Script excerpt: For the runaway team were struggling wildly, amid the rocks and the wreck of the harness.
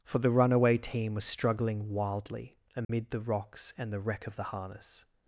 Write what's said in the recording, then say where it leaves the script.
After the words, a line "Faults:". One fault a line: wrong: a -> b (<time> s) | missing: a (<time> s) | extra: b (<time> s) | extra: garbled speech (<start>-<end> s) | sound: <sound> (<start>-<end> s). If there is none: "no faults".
For the runaway team was struggling wildly, amid the rocks and the wreck of the harness.
Faults:
wrong: were -> was (1.1 s)
sound: dropout (2.8-2.9 s)